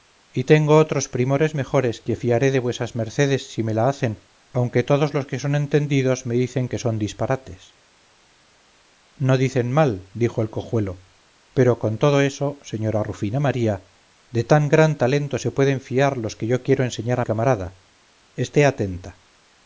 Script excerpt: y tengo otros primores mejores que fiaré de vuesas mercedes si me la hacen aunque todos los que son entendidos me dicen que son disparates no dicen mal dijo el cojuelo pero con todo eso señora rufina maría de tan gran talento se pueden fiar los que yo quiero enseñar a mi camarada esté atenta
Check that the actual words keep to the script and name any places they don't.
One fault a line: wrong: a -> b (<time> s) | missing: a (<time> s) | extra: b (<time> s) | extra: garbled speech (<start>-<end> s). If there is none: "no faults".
missing: mi (17.2 s)